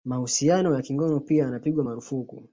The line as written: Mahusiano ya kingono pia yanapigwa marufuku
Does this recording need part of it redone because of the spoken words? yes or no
no